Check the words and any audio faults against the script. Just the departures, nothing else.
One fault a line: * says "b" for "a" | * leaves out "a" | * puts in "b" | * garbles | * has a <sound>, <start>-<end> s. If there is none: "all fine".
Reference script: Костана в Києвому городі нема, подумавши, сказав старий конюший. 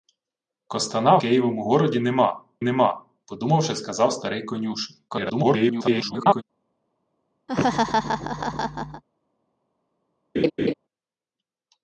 * leaves out "в"
* puts in "нема"
* garbles
* has a laugh, 7.5-9.0 s
* has a laugh, 10.3-10.7 s